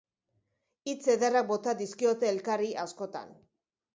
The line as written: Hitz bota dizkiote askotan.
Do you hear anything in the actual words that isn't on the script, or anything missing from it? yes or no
yes